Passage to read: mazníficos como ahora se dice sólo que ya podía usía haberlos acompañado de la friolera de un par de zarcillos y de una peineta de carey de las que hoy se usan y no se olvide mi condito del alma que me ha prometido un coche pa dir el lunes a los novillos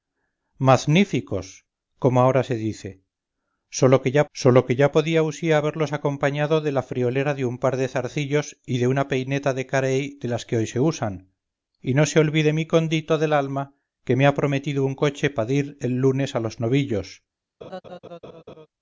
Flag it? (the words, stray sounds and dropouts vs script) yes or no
yes